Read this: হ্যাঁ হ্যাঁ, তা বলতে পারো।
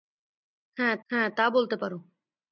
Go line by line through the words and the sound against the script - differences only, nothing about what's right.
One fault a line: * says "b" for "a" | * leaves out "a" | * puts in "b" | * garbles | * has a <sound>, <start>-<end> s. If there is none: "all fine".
all fine